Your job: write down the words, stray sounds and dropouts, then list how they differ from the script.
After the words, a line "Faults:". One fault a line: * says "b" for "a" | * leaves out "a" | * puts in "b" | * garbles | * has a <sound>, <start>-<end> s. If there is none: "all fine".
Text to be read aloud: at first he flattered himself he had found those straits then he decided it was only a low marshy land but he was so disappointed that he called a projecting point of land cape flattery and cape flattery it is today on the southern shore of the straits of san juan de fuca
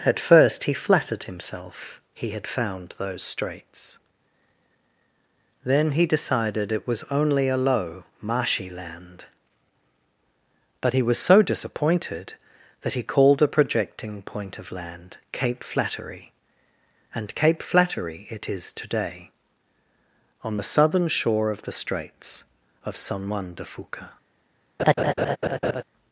at first he flattered himself he had found those straits then he decided it was only a low marshy land but he was so disappointed that he called a projecting point of land cape flattery and cape flattery it is today on the southern shore of the straits of san juan de fuca
Faults:
* has a laugh, 24.8-25.8 s